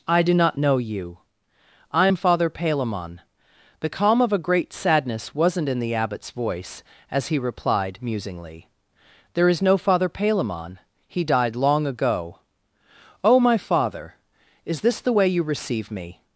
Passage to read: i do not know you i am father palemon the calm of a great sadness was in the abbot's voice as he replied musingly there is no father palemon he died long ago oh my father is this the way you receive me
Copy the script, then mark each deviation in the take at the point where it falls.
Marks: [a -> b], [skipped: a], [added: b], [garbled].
i do not know you i am father palemon the calm of a great sadness [was -> wasn't] in the abbot's voice as he replied musingly there is no father palemon he died long ago oh my father is this the way you receive me